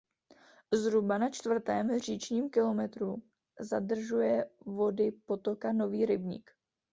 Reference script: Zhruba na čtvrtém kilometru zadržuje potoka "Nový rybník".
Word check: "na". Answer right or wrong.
right